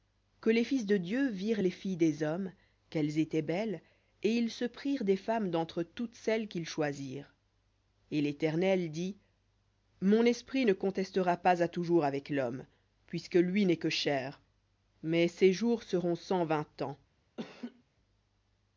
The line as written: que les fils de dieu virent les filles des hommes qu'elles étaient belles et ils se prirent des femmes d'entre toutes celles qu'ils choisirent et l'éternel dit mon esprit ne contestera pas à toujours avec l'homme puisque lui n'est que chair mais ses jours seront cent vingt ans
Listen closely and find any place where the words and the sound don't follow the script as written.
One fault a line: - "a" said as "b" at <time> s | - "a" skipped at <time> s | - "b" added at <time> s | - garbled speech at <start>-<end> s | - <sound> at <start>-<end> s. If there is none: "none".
- laugh at 17.4-17.8 s